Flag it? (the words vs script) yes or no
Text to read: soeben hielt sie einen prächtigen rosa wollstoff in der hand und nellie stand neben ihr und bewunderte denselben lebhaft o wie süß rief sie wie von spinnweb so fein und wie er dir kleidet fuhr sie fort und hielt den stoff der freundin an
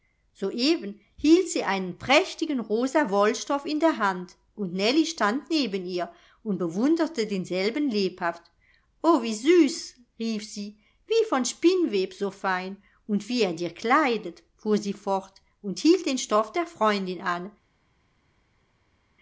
no